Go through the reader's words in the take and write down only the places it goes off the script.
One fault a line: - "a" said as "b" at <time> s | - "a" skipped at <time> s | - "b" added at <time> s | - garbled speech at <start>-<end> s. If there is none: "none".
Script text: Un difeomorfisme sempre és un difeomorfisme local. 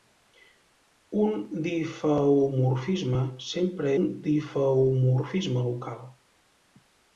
- "és" skipped at 3.9 s